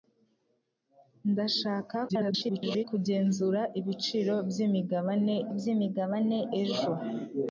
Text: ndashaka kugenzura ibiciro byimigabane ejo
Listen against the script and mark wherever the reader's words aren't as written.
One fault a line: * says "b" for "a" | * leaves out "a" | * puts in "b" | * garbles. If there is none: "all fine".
* garbles
* puts in "byimigabane"